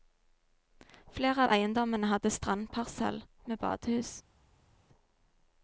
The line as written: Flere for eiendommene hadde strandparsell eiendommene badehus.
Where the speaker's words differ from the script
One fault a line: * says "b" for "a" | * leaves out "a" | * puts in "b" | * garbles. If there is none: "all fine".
* says "av" for "for"
* says "med" for "eiendommene"